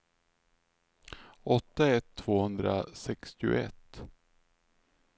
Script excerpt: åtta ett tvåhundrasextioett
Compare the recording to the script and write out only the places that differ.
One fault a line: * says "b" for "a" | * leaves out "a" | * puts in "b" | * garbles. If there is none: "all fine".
all fine